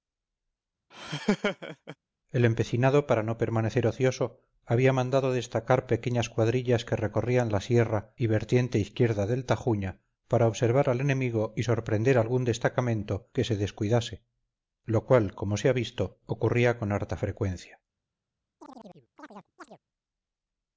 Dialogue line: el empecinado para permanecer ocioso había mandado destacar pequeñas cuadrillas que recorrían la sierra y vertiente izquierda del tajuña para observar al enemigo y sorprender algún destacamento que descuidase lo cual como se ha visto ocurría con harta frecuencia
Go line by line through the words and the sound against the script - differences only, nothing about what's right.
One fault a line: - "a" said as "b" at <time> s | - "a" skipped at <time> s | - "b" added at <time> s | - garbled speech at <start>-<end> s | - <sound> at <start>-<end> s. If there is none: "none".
- laugh at 0.9-2.0 s
- "no" added at 3.2 s
- "se" added at 13.4 s
- chirp at 18.6-19.8 s